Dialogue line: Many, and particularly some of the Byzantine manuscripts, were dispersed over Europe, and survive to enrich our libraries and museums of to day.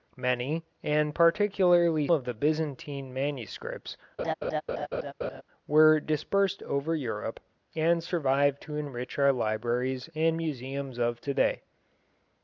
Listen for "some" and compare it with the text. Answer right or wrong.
wrong